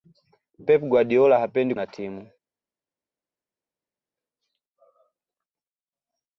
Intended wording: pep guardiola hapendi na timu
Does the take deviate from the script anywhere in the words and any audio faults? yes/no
no